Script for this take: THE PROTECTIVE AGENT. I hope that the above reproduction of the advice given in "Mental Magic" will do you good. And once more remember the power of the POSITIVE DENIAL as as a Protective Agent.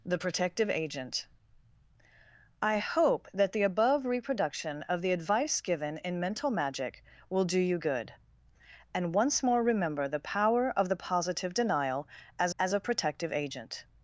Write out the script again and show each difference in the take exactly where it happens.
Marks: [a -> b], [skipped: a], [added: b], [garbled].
THE PROTECTIVE AGENT. I hope that the above reproduction of the advice given in "Mental Magic" will do you good. And once more remember the power of the POSITIVE DENIAL as as a Protective Agent.